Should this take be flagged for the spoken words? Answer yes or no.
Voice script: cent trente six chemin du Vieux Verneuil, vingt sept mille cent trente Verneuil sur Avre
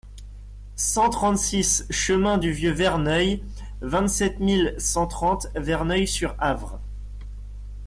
no